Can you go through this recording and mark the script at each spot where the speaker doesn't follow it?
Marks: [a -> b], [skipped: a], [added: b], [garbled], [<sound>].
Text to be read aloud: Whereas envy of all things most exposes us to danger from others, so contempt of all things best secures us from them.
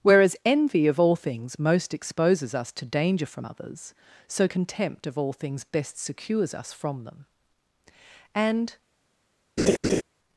Whereas envy of all things most exposes us to danger from others, so contempt of all things best secures us from them. [added: And] [laugh]